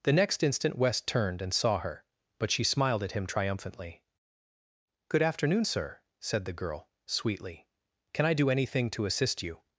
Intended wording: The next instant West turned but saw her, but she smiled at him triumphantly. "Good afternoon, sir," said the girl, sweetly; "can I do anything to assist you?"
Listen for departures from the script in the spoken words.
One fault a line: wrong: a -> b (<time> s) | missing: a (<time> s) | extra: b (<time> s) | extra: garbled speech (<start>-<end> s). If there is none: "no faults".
wrong: but -> and (1.4 s)